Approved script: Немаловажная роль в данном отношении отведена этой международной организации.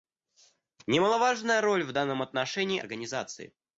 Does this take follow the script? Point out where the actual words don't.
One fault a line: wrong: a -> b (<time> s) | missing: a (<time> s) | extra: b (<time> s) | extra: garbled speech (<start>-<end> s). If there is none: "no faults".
missing: отведена этой международной (2.8 s)